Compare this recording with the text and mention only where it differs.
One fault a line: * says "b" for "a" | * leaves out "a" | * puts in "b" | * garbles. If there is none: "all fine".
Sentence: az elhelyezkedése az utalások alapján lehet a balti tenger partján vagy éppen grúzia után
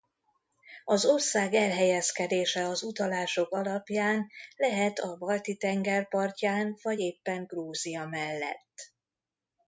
* puts in "ország"
* says "mellett" for "után"